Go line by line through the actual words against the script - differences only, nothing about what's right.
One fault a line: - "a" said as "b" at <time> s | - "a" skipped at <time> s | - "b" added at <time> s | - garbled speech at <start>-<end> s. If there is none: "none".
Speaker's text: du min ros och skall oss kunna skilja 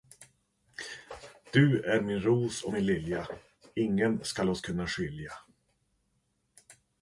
- "är" added at 1.8 s
- "min lilja ingen" added at 2.7 s